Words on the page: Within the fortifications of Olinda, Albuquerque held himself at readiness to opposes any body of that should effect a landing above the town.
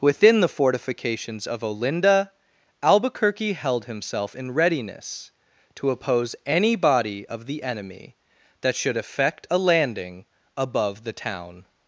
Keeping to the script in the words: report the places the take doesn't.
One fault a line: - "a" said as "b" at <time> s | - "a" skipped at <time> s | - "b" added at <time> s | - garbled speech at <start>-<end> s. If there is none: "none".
- "at" said as "in" at 4.3 s
- "opposes" said as "oppose" at 5.9 s
- "the enemy" added at 7.5 s